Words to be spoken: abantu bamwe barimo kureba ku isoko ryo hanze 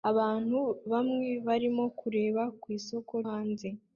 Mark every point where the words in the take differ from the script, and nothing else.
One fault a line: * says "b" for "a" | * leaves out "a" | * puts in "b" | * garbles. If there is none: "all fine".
* leaves out "ryo"